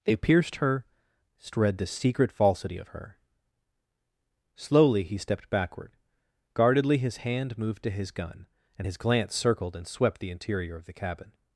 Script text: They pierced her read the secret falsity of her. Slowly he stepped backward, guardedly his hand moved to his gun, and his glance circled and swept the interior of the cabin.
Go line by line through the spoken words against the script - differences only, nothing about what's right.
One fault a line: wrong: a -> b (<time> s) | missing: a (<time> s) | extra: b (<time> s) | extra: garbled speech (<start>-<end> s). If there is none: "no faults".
no faults